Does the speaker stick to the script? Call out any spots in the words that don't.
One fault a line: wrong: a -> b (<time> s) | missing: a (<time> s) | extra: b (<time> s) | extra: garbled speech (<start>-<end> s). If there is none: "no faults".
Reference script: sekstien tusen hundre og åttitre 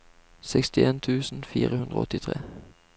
extra: fire (1.4 s)